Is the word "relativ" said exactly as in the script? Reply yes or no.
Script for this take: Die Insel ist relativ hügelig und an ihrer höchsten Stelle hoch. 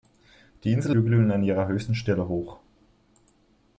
no